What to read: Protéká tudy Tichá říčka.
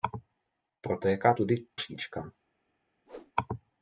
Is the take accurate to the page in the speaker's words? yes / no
no